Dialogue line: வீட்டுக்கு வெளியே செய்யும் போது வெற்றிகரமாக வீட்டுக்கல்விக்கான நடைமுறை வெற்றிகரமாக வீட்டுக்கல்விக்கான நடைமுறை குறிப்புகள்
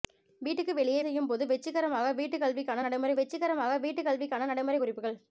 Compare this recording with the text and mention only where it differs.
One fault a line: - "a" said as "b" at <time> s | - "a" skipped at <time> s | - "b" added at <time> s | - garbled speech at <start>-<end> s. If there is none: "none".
none